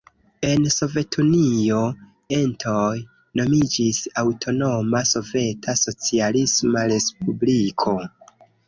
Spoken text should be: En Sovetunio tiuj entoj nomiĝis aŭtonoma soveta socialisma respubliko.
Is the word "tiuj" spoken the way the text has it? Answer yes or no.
no